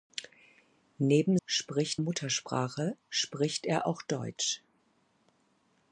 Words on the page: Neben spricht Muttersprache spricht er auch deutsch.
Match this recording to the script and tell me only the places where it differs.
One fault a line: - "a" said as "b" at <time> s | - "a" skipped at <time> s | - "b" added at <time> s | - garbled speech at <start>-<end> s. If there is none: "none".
none